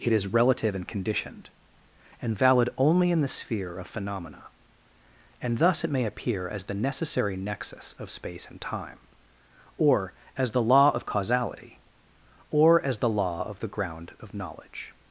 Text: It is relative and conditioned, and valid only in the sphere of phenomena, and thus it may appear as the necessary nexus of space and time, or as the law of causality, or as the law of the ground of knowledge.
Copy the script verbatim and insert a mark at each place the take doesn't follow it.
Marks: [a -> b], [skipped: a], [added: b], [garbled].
It is relative and conditioned, and valid only in the sphere of phenomena, and thus it may appear as the necessary nexus of space and time, or as the law of causality, or as the law of the ground of knowledge.